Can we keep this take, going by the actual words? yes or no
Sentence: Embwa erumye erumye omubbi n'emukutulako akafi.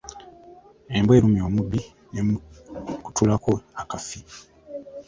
no